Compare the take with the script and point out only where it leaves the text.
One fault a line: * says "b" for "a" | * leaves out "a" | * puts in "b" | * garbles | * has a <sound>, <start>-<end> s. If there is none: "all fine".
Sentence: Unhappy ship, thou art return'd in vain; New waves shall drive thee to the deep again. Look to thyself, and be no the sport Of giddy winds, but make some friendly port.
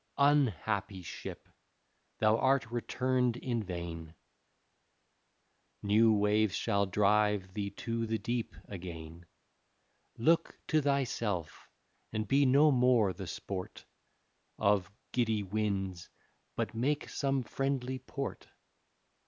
* puts in "more"